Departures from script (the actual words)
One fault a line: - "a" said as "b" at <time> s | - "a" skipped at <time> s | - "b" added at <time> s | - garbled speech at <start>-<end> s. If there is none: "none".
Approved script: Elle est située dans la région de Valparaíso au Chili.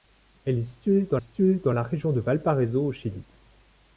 - "située dans" added at 1.1 s